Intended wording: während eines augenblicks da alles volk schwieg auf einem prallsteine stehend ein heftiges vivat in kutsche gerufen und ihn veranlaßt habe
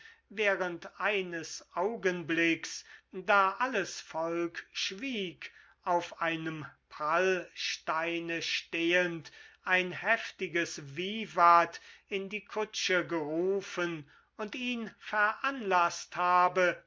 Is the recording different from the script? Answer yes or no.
yes